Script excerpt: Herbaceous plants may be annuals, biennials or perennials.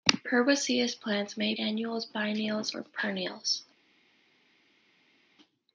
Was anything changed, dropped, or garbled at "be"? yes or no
yes